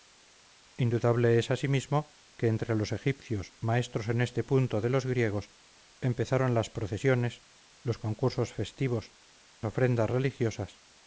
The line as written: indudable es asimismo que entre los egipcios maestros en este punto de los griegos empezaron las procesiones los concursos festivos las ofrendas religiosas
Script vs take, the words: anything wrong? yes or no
yes